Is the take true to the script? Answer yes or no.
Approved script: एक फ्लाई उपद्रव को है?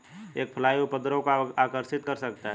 no